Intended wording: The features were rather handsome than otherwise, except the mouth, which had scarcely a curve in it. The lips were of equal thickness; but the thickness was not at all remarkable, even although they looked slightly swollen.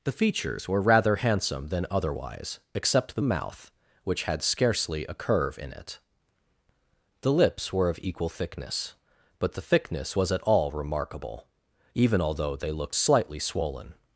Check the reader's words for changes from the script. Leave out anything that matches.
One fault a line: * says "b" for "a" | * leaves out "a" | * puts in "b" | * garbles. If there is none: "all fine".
* leaves out "not"